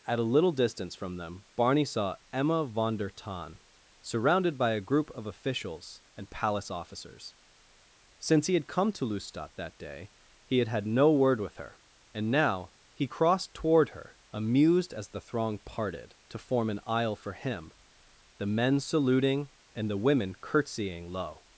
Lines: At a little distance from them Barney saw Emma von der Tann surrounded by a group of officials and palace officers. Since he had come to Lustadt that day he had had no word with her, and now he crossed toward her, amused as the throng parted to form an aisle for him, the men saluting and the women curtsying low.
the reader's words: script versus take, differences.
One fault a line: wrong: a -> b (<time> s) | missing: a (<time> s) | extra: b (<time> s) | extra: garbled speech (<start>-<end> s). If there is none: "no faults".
no faults